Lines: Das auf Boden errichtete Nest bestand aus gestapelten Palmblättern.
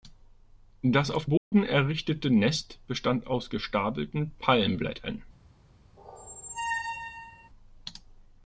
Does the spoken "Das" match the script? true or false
true